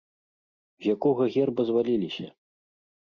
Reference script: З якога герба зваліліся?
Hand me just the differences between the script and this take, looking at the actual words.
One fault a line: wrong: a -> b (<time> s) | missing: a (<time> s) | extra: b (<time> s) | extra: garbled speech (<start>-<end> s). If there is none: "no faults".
no faults